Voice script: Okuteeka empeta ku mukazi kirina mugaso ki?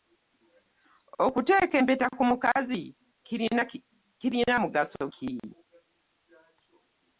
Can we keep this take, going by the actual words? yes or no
yes